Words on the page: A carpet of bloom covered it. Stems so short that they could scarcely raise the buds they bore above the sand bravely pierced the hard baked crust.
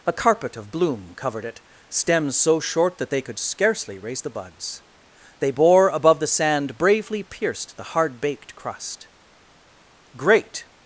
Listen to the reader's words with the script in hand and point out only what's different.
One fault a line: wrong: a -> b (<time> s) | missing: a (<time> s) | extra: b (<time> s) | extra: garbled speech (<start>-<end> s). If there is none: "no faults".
extra: Great (10.2 s)